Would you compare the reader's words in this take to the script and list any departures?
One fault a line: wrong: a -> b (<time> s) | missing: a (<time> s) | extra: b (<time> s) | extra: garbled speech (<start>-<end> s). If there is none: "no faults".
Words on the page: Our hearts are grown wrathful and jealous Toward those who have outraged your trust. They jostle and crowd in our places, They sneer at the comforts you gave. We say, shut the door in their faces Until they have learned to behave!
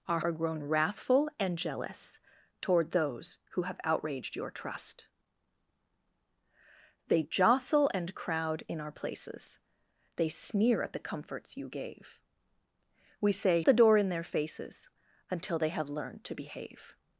missing: hearts (0.2 s)
missing: shut (13.6 s)